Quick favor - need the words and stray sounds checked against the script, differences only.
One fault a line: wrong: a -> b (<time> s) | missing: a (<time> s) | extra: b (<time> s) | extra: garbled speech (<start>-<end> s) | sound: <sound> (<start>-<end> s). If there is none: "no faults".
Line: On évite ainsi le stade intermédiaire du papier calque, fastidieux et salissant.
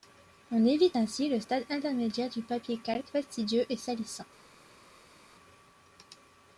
no faults